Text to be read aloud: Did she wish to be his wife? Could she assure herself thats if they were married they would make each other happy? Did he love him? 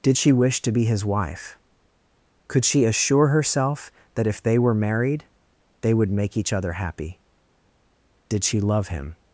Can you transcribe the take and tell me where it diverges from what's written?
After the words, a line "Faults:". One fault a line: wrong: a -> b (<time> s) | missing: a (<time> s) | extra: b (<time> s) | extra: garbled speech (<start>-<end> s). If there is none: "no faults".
Did she wish to be his wife? Could she assure herself that if they were married they would make each other happy? Did she love him?
Faults:
wrong: thats -> that (4.1 s)
wrong: he -> she (8.4 s)